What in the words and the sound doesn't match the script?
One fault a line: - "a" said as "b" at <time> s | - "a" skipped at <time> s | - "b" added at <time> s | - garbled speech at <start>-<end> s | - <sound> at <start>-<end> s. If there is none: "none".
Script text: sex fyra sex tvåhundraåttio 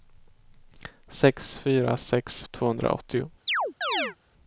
- chirp at 3.5-4.2 s